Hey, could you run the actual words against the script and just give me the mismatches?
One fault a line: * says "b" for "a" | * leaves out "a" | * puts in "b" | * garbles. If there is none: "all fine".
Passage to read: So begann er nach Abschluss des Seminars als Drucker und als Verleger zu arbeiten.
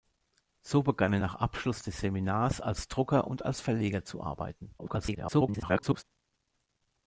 * garbles